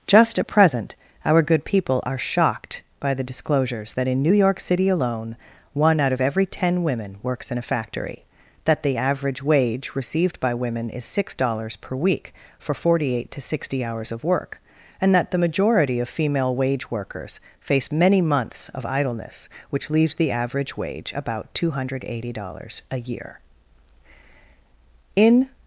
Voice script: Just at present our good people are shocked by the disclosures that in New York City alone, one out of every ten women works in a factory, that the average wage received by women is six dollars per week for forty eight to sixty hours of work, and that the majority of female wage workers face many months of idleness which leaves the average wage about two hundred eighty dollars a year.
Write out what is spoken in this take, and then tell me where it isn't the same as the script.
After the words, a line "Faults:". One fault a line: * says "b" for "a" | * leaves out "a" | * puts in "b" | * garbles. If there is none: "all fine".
Just at present our good people are shocked by the disclosures that in New York City alone, one out of every ten women works in a factory, that the average wage received by women is six dollars per week for forty eight to sixty hours of work, and that the majority of female wage workers face many months of idleness which leaves the average wage about two hundred eighty dollars a year. In
Faults:
* puts in "In"